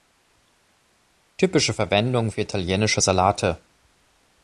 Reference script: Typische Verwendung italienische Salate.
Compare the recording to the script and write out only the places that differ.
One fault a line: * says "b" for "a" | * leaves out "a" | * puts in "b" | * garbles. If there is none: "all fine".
* puts in "für"